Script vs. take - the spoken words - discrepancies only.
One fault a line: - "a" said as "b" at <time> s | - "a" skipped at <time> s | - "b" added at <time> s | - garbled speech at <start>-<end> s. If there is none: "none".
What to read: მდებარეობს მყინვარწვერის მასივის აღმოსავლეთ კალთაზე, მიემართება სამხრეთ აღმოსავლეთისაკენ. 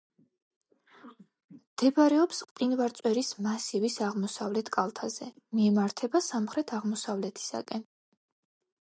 none